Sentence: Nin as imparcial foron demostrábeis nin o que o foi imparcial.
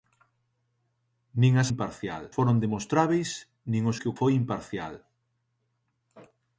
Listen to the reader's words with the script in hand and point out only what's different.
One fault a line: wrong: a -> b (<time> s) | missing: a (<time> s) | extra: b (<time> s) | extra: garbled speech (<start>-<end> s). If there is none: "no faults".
no faults